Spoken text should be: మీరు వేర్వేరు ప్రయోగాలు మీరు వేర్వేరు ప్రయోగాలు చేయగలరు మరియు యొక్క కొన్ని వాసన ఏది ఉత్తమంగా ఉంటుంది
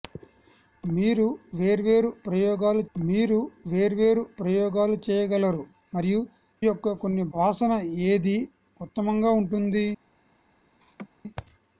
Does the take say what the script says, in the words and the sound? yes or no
no